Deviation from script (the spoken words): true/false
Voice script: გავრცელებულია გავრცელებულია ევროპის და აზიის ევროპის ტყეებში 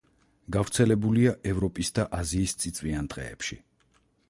true